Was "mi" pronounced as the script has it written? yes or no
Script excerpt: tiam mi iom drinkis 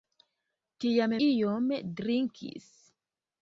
no